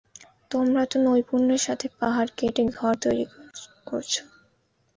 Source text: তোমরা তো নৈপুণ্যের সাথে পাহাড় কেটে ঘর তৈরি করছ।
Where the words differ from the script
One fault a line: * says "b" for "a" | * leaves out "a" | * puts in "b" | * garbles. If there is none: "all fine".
all fine